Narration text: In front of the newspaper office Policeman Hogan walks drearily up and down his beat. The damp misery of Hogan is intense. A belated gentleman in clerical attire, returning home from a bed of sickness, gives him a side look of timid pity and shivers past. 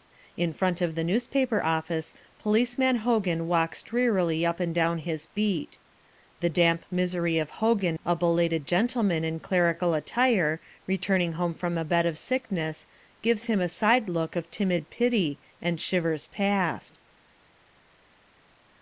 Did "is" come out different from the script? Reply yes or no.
yes